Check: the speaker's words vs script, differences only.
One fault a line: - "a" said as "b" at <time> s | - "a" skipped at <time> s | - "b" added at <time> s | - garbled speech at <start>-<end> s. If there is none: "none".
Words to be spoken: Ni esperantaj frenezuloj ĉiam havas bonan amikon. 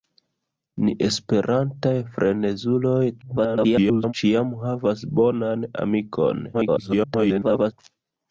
- garbled speech at 3.2-4.1 s
- garbled speech at 6.5-7.7 s